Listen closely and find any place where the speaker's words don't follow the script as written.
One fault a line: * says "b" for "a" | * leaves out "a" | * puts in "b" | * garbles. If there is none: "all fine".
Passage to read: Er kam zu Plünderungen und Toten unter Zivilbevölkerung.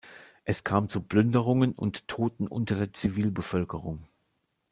* says "Es" for "Er"
* puts in "der"